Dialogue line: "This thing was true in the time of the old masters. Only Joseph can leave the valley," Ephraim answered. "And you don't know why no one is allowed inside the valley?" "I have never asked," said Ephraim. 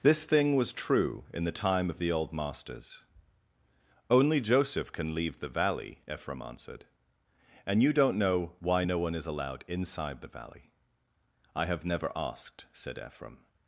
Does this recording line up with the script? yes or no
yes